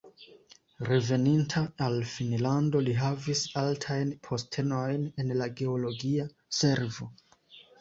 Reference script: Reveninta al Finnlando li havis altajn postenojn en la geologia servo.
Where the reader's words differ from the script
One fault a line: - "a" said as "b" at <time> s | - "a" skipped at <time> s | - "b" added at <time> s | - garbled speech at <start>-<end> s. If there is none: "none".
none